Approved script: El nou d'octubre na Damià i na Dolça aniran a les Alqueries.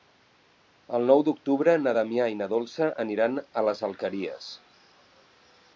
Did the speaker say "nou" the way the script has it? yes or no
yes